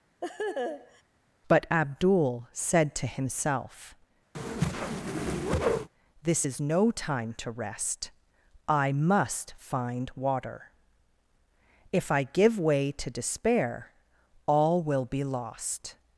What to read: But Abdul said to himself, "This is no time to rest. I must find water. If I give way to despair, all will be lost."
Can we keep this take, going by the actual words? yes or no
yes